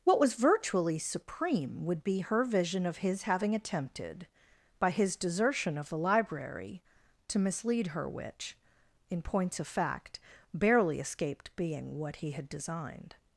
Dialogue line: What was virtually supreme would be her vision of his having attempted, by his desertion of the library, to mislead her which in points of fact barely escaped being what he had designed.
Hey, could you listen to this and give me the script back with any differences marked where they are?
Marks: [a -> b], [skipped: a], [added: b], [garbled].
What was virtually supreme would be her vision of his having attempted, by his desertion of the library, to mislead her which in points of fact barely escaped being what he had designed.